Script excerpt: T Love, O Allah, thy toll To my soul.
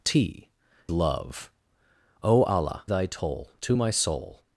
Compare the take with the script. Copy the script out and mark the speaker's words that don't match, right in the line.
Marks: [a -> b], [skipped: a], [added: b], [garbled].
T Love, O Allah, thy toll To my soul.